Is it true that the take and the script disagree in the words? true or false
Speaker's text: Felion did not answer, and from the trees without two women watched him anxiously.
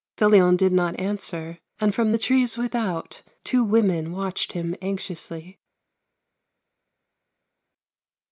false